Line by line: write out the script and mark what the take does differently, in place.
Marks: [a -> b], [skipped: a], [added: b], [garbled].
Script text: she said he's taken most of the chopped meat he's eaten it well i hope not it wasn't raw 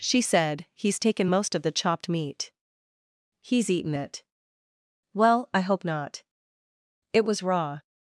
she said he's taken most of the chopped meat he's eaten it well i hope not it [wasn't -> was] raw